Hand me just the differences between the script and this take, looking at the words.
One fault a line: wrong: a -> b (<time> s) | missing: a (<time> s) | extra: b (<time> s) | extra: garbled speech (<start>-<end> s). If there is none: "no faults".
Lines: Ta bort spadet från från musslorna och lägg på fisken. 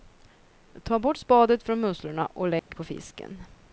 missing: från (1.8 s)